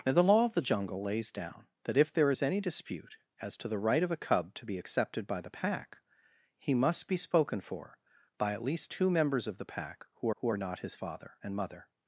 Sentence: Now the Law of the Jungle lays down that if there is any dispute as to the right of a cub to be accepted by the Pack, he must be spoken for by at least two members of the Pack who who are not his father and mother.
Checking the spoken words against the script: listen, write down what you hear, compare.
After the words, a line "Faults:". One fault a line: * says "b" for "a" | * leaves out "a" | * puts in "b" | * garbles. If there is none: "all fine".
Now the Law of the Jungle lays down that if there is any dispute as to the right of a cub to be accepted by the Pack, he must be spoken for by at least two members of the Pack who who are not his father and mother.
Faults:
all fine